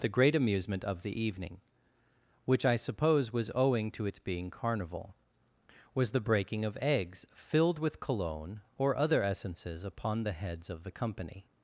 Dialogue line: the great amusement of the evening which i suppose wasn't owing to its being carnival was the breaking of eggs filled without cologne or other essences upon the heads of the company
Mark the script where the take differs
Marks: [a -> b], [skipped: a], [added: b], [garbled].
the great amusement of the evening which i suppose [wasn't -> was] owing to its being carnival was the breaking of eggs filled [without -> with] cologne or other essences upon the heads of the company